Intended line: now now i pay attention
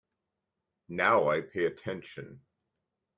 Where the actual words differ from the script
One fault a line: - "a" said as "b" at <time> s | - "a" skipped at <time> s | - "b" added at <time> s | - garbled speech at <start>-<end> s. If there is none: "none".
- "now" skipped at 1.3 s